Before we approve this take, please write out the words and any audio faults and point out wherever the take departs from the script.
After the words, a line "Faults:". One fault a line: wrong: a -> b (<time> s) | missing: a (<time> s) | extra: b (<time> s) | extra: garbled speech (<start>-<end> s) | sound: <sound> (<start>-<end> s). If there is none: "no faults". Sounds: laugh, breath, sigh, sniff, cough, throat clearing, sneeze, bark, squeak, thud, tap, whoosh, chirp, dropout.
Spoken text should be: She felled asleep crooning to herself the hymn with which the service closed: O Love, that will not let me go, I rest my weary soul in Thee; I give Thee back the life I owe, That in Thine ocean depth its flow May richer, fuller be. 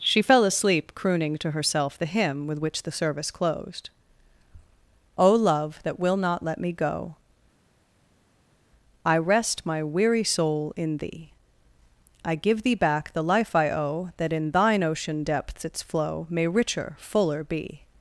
She fell asleep crooning to herself the hymn with which the service closed: O Love, that will not let me go, I rest my weary soul in Thee; I give Thee back the life I owe, That in Thine ocean depths its flow May richer, fuller be.
Faults:
wrong: felled -> fell (0.2 s)
wrong: depth -> depths (15.2 s)